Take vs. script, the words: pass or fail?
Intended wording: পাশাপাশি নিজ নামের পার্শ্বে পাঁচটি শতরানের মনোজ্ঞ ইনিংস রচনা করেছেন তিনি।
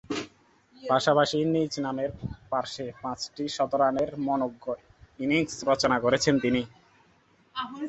pass